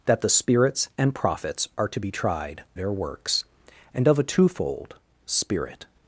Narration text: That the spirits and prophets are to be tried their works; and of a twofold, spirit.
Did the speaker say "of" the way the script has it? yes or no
yes